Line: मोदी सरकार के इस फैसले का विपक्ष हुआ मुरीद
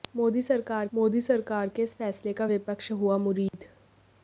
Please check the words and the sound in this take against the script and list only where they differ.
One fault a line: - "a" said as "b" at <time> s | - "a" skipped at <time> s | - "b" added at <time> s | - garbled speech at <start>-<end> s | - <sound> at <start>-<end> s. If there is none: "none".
- "मोदी सरकार" added at 0.9 s
- dropout at 3.5-3.5 s